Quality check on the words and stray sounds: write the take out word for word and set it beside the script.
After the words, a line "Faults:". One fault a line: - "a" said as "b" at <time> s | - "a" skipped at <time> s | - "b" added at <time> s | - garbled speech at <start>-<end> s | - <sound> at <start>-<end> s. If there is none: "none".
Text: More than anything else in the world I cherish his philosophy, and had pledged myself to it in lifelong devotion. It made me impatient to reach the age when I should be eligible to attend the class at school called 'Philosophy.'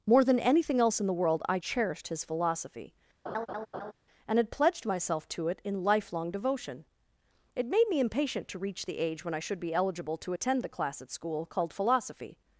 More than anything else in the world I cherished his philosophy, and had pledged myself to it in lifelong devotion. It made me impatient to reach the age when I should be eligible to attend the class at school called 'Philosophy.'
Faults:
- "cherish" said as "cherished" at 1.5 s
- laugh at 3.3-3.9 s